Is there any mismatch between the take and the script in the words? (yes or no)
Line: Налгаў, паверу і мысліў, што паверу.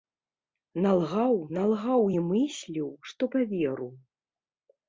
yes